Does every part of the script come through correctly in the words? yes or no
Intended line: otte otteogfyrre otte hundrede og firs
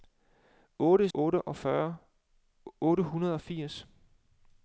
yes